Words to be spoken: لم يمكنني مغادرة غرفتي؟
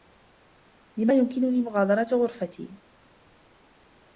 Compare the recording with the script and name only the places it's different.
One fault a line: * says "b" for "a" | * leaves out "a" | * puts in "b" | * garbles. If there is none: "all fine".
all fine